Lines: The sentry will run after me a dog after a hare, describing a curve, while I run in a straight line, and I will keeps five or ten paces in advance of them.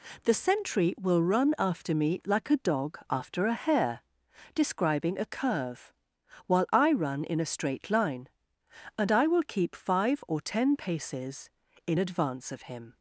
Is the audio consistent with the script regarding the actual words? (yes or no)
no